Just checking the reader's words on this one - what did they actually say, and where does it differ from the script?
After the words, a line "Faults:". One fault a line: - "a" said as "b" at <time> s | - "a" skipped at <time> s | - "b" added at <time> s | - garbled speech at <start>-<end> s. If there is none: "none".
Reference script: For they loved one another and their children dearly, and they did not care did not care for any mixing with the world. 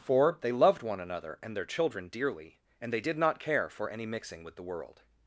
For they loved one another and their children dearly, and they did not care for any mixing with the world.
Faults:
- "did not care" skipped at 3.7 s